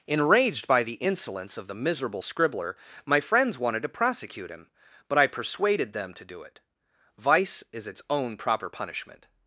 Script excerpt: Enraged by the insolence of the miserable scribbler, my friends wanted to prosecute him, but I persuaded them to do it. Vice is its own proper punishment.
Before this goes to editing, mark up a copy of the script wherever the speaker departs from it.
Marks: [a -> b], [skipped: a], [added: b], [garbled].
Enraged by the insolence of the miserable scribbler, my friends wanted to prosecute him, but I persuaded them to do it. Vice is its own proper punishment.